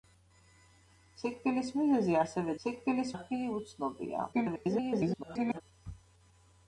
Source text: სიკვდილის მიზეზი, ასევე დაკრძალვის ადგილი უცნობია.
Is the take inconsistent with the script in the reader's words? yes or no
yes